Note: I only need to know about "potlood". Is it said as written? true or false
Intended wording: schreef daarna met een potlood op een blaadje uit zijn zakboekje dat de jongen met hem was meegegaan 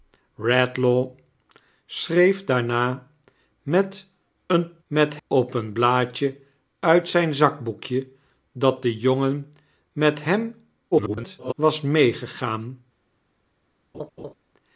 false